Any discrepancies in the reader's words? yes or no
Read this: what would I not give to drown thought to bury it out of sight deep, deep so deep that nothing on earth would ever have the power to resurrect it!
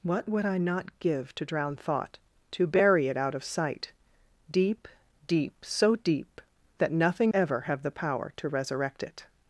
yes